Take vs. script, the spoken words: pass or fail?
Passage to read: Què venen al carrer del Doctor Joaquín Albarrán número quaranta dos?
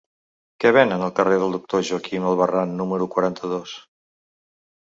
pass